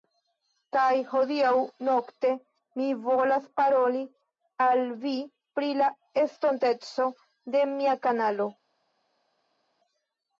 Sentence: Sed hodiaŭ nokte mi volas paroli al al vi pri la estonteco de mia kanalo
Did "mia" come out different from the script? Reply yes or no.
no